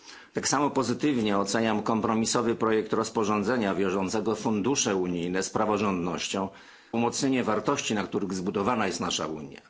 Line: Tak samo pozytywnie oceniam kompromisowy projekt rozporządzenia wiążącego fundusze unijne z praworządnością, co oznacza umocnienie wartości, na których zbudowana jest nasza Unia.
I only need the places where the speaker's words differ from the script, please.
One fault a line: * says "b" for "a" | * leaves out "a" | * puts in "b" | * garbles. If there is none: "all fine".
* leaves out "co oznacza"